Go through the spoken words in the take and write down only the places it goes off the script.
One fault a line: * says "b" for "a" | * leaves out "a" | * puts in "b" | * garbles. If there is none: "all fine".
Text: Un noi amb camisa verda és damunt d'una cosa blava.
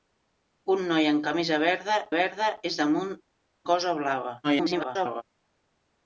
* puts in "verda"
* leaves out "d'una"
* garbles